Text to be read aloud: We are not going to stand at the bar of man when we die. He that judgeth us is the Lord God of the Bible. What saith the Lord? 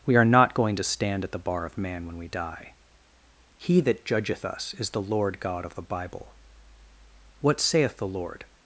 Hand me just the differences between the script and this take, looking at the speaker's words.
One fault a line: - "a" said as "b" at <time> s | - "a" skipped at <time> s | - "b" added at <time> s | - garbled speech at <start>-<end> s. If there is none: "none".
none